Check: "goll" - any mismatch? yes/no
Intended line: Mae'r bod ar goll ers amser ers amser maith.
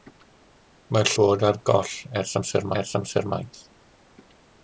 no